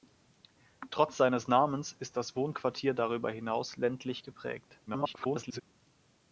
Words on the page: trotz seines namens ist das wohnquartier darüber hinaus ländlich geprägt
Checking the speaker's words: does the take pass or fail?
fail